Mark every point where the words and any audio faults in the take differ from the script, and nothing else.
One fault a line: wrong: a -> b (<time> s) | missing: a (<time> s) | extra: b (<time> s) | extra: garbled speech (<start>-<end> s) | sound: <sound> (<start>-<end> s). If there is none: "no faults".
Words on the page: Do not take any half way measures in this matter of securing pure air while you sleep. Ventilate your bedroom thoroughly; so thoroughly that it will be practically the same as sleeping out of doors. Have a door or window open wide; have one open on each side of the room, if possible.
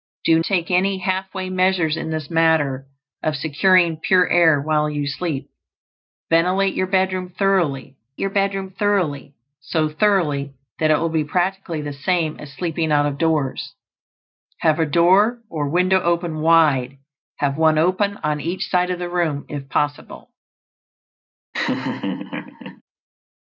missing: not (0.4 s)
extra: your bedroom thoroughly (8.2 s)
sound: laugh (21.5-22.8 s)